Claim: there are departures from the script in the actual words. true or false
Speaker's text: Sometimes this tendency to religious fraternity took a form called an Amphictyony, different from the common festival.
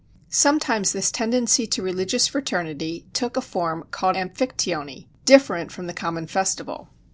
true